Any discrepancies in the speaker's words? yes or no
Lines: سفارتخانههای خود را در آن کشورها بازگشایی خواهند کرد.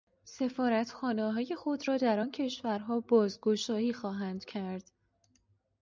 no